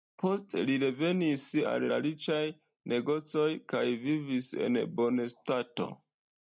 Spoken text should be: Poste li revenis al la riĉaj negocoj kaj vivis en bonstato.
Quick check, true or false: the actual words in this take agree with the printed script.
true